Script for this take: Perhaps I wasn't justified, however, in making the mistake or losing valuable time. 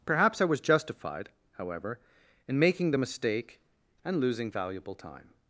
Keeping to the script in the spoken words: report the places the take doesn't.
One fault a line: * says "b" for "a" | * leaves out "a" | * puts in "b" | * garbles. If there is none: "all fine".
* says "was" for "wasn't"
* says "and" for "or"